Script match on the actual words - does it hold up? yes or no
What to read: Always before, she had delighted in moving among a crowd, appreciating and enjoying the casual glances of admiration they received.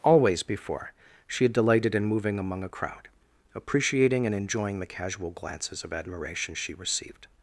no